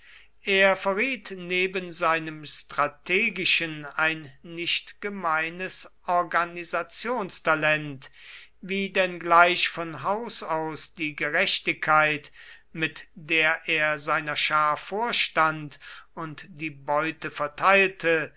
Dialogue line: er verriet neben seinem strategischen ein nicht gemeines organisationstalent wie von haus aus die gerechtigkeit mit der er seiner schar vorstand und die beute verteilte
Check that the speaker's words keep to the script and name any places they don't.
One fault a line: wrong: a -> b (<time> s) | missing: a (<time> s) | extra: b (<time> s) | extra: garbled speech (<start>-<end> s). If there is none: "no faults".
extra: denn gleich (8.9 s)